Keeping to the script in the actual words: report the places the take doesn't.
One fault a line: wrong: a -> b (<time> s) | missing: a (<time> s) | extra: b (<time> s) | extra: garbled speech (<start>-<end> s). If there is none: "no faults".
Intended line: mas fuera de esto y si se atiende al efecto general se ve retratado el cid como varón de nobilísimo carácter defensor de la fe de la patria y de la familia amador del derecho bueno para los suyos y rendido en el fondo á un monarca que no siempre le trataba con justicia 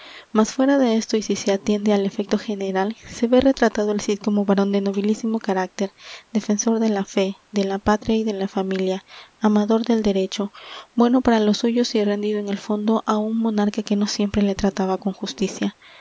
no faults